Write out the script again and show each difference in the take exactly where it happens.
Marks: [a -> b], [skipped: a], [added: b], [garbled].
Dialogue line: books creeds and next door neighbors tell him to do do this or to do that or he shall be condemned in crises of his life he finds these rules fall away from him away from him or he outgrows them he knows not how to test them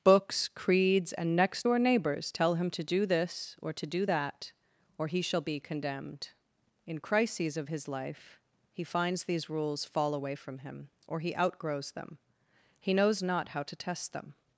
books creeds and next door neighbors tell him to do [skipped: do] this or to do that or he shall be condemned in crises of his life he finds these rules fall away from him [skipped: away from him] or he outgrows them he knows not how to test them